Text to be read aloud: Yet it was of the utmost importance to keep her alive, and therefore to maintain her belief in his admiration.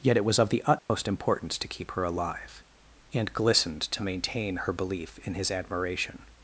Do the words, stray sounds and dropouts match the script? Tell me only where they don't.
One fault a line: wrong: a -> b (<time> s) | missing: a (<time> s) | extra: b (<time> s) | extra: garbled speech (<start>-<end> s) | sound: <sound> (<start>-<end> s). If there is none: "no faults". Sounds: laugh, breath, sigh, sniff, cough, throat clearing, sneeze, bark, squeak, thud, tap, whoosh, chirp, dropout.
sound: dropout (0.8-0.9 s)
wrong: therefore -> glistened (3.3 s)